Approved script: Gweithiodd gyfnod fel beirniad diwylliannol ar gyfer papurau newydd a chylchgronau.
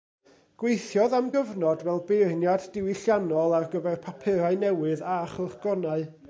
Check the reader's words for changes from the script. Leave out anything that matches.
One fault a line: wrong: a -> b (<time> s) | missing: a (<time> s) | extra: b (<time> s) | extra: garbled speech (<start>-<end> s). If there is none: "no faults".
extra: am (1.2 s)